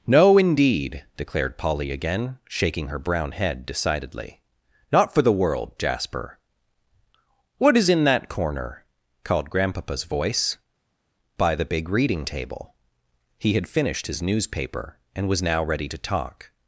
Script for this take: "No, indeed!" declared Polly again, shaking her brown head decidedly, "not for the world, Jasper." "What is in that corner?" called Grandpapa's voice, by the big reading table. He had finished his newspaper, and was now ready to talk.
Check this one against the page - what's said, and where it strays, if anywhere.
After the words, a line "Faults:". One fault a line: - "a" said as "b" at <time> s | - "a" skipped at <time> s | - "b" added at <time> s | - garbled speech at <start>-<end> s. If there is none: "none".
"No, indeed!" declared Polly again, shaking her brown head decidedly, "not for the world, Jasper." "What is in that corner?" called Grandpapa's voice, by the big reading table. He had finished his newspaper, and was now ready to talk.
Faults:
none